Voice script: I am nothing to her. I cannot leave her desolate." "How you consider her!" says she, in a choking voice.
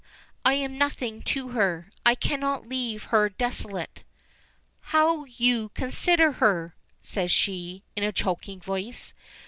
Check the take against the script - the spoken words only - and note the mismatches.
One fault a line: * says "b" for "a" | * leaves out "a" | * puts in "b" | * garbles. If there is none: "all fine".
all fine